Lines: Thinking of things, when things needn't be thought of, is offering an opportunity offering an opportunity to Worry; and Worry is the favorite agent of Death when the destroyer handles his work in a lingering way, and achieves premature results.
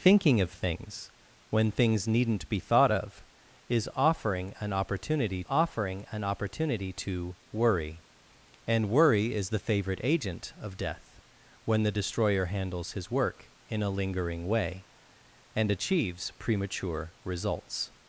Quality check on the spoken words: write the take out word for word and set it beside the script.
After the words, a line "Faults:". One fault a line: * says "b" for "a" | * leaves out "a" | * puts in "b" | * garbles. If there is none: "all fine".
Thinking of things, when things needn't be thought of, is offering an opportunity offering an opportunity to Worry; and Worry is the favorite agent of Death when the destroyer handles his work in a lingering way, and achieves premature results.
Faults:
all fine